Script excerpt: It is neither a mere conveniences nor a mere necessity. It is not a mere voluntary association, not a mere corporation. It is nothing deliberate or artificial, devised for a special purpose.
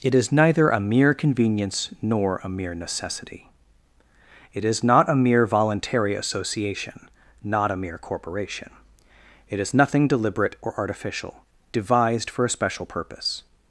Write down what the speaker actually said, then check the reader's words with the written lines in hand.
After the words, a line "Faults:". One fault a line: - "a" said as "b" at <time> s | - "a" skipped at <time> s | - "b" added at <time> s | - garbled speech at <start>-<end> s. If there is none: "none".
It is neither a mere convenience nor a mere necessity. It is not a mere voluntary association, not a mere corporation. It is nothing deliberate or artificial, devised for a special purpose.
Faults:
- "conveniences" said as "convenience" at 1.1 s